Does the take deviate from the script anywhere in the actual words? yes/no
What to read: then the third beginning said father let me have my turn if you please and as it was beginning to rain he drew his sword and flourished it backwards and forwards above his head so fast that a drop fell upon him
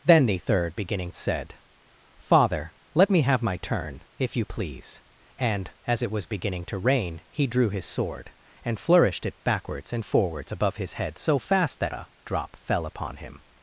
no